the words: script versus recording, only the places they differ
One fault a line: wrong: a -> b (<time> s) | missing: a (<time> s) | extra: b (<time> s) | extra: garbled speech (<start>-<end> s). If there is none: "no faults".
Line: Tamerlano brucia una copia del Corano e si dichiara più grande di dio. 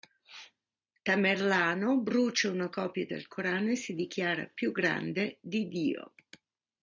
no faults